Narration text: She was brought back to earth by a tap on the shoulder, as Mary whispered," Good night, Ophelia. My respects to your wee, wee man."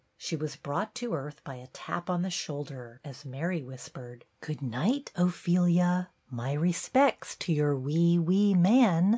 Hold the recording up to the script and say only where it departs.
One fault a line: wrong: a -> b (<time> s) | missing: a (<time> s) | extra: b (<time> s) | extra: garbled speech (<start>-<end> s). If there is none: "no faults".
missing: back (0.9 s)